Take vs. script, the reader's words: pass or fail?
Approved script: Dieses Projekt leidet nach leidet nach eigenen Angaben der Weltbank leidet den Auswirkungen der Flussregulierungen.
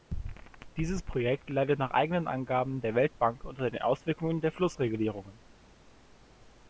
fail